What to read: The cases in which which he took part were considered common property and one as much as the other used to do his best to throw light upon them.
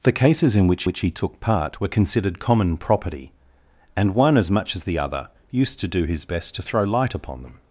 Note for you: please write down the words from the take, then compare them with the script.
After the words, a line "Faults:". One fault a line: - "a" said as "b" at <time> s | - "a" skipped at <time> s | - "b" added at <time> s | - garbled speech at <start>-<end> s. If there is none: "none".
The cases in which which he took part were considered common property and one as much as the other used to do his best to throw light upon them.
Faults:
none